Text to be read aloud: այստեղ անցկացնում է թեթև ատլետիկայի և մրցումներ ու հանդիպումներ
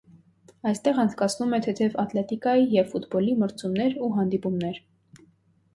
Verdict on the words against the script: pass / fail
fail